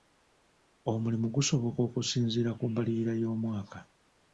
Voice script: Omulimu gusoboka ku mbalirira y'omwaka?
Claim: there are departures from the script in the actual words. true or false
true